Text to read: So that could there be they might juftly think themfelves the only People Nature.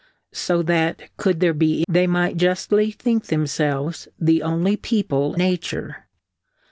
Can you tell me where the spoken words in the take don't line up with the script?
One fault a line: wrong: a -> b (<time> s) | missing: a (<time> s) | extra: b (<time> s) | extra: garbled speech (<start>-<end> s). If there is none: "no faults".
no faults